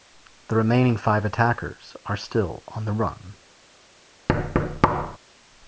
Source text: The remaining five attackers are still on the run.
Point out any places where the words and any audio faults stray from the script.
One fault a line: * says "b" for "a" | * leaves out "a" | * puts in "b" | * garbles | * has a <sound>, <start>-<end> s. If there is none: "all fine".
* has a thud, 4.3-5.2 s